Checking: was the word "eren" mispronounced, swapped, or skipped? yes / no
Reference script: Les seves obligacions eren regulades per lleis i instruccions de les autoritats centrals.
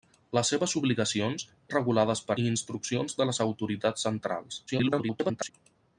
yes